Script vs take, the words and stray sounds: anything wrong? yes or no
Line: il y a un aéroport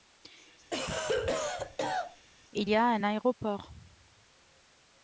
yes